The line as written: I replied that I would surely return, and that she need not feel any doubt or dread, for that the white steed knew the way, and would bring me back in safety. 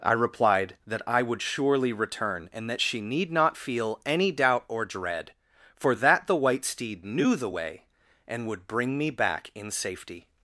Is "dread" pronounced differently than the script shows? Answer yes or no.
no